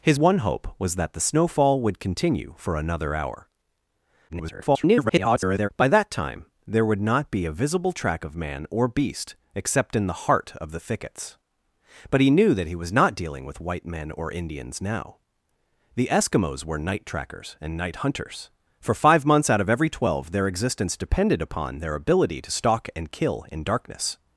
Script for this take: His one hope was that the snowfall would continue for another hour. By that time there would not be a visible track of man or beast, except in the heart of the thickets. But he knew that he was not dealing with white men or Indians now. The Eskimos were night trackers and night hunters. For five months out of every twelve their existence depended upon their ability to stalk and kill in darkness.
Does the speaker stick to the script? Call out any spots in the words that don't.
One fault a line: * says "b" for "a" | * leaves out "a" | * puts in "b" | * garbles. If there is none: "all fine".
* garbles